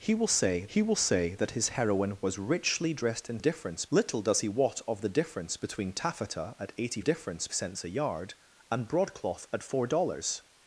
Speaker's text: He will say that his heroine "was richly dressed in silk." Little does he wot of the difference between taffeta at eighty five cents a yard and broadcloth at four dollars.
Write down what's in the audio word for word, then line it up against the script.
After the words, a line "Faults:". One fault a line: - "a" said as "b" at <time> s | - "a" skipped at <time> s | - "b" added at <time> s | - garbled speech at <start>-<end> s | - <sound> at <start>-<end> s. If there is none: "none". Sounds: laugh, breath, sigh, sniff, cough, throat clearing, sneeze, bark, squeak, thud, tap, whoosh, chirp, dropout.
He will say he will say that his heroine "was richly dressed in difference." Little does he wot of the difference between taffeta at eighty difference cents a yard and broadcloth at four dollars.
Faults:
- "he will say" added at 0.7 s
- "silk" said as "difference" at 3.4 s
- "five" said as "difference" at 7.0 s